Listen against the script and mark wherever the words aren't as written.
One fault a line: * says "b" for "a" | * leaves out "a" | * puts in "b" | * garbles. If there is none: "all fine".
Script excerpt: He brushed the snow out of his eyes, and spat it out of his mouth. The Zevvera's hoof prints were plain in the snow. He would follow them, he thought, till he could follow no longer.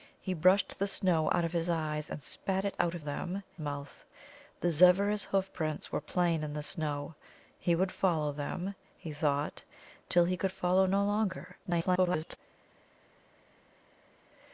* says "them" for "his"
* garbles